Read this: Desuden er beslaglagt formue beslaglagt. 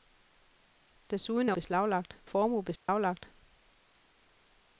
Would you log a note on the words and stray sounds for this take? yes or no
yes